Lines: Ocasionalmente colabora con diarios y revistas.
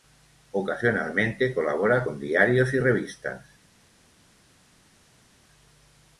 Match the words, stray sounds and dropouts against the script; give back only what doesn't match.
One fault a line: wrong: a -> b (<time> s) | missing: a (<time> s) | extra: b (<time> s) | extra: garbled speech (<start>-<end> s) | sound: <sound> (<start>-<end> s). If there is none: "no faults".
no faults